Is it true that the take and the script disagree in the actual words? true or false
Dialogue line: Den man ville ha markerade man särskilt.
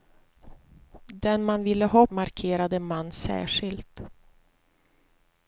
false